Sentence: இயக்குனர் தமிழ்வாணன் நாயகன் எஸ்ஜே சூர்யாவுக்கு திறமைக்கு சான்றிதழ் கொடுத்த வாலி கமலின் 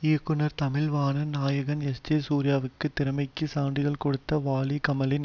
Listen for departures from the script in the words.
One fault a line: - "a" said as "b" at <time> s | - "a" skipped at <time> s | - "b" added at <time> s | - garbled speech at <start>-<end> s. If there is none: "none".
none